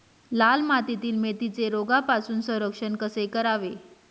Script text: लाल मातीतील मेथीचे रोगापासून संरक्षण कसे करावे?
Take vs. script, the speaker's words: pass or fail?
pass